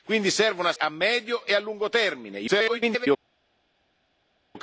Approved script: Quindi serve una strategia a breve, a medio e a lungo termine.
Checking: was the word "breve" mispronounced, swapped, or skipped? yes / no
yes